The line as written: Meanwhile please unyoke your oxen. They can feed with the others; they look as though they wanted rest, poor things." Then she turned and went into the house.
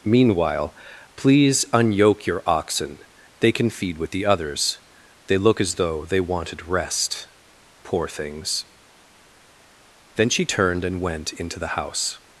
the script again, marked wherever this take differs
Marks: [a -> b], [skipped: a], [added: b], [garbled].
Meanwhile please unyoke your oxen. They can feed with the others; they look as though they wanted rest, poor things." Then she turned and went into the house.